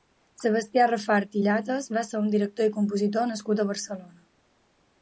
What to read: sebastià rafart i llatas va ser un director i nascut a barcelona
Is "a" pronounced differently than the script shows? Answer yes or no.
no